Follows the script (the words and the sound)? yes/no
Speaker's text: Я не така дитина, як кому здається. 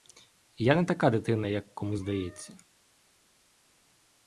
yes